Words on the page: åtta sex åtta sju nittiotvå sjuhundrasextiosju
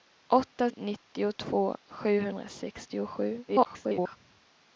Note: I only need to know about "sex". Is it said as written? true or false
false